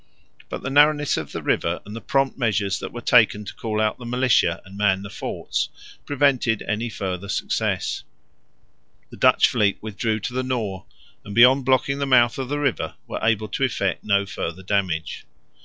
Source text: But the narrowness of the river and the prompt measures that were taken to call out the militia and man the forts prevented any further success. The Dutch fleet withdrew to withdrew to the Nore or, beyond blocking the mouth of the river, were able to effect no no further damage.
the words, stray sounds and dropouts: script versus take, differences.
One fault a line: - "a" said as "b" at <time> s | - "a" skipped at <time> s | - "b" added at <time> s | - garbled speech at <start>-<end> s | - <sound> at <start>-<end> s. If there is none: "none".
- "withdrew to" skipped at 10.3 s
- "or" said as "and" at 11.2 s
- "no" skipped at 14.2 s